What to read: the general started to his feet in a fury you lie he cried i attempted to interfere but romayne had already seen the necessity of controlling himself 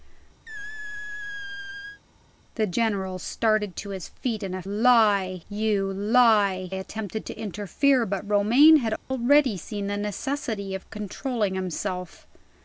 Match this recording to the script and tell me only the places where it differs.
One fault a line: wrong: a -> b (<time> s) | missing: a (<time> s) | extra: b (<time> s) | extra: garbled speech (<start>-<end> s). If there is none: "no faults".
wrong: fury -> lie (4.6 s)
missing: he cried i (6.7 s)